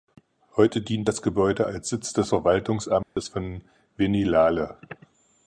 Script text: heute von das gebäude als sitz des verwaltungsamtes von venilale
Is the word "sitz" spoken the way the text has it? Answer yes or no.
yes